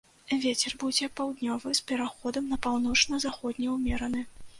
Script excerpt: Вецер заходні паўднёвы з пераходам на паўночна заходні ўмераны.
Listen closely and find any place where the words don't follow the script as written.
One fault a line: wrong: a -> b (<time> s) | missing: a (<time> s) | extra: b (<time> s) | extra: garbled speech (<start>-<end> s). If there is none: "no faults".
wrong: заходні -> будзе (0.8 s)